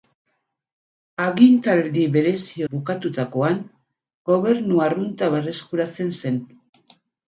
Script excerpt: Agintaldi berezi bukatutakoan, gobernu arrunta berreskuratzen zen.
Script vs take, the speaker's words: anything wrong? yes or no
no